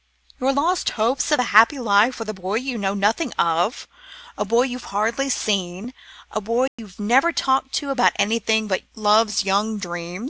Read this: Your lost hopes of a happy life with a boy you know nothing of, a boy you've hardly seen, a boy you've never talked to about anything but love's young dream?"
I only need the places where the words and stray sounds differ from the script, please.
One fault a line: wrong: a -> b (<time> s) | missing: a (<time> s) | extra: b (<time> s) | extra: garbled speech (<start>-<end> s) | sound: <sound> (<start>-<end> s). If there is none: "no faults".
sound: dropout (6.7-6.8 s)